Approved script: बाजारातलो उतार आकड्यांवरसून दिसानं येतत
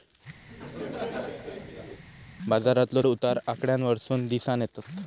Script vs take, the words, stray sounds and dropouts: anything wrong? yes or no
yes